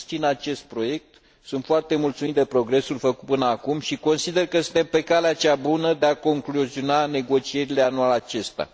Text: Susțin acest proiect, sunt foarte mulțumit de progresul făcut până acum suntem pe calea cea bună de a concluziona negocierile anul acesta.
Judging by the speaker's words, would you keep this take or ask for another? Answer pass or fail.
fail